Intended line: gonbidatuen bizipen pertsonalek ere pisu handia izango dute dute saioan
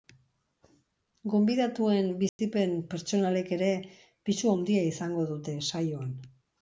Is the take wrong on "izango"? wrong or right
right